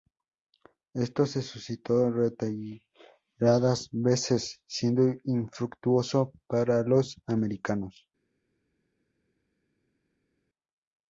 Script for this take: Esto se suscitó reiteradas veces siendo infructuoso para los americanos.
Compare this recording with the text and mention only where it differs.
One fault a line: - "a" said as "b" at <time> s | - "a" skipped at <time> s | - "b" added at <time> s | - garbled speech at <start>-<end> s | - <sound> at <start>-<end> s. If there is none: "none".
none